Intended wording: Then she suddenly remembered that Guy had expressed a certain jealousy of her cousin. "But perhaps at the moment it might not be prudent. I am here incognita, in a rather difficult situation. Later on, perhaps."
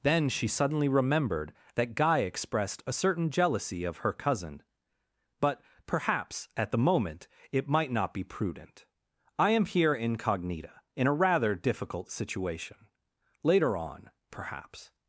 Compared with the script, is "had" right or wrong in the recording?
wrong